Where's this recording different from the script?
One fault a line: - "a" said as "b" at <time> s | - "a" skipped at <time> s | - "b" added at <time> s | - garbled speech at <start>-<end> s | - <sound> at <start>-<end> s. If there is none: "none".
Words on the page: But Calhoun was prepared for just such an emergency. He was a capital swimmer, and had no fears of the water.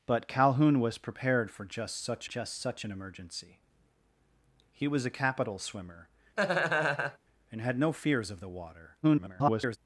- "just such" added at 2.2 s
- laugh at 6.4-7.2 s
- garbled speech at 9.0-9.8 s